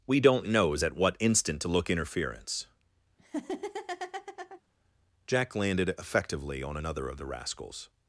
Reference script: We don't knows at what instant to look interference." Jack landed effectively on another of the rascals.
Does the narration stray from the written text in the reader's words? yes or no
no